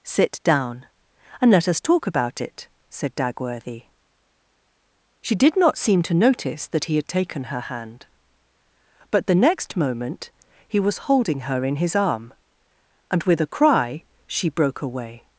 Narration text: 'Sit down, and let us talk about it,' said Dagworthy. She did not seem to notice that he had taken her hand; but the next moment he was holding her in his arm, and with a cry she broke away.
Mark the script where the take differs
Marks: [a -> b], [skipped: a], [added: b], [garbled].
'Sit down, and let us talk about it,' said Dagworthy. She did not seem to notice that he had taken her hand; but the next moment he was holding her in his arm, and with a cry she broke away.